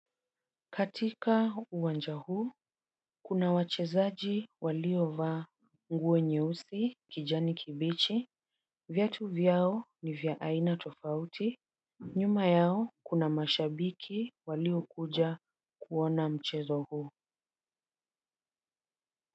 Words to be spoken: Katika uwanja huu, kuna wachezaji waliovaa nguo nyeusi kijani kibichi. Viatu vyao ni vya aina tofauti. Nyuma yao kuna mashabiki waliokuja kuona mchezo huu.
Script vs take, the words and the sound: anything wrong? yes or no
no